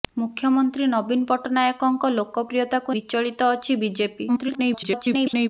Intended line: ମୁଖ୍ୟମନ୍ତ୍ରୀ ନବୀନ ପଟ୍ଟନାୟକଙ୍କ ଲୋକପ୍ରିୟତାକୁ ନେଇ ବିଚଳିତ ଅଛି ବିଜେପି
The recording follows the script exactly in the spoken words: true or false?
false